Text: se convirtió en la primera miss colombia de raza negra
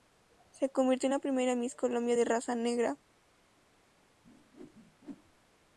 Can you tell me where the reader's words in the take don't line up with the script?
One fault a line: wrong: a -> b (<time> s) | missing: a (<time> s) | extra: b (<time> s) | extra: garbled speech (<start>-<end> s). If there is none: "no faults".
no faults